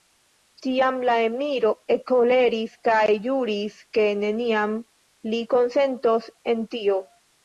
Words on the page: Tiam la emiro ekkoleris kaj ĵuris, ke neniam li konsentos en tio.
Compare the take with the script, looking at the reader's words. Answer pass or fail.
pass